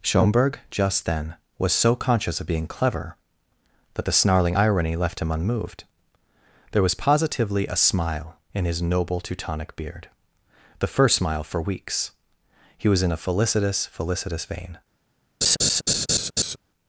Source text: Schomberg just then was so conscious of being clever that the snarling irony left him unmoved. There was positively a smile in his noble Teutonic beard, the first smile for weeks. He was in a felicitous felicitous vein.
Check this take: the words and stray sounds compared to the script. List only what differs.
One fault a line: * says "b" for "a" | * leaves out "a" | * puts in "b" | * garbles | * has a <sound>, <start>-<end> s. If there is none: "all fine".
* has a laugh, 15.4-16.6 s